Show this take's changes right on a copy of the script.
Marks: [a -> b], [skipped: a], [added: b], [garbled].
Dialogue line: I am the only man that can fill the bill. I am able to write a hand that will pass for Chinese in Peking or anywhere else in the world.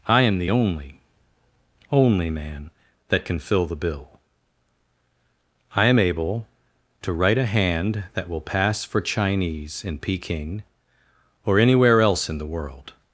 I am the only [added: only] man that can fill the bill. I am able to write a hand that will pass for Chinese in Peking or anywhere else in the world.